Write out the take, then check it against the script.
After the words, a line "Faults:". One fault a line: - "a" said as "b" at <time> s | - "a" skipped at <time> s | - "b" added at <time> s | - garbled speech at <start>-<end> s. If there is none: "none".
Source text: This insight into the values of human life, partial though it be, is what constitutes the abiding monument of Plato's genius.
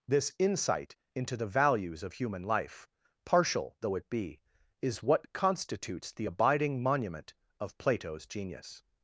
This insight into the values of human life, partial though it be, is what constitutes the abiding monument of Plato's genius.
Faults:
none